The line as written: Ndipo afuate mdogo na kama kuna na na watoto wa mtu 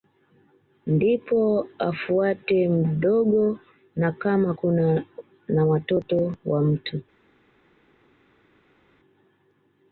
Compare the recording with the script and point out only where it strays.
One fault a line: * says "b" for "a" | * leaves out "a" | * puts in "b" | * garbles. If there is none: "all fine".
* leaves out "na"